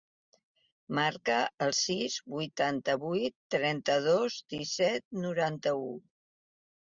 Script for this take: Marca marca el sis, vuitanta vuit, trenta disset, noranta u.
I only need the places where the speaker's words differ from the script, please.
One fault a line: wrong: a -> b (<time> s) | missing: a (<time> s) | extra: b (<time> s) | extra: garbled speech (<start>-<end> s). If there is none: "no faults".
missing: marca (1.4 s)
extra: dos (4.1 s)